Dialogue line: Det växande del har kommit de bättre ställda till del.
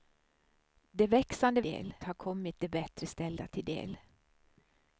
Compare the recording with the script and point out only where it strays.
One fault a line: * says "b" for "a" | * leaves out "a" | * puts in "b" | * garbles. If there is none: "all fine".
all fine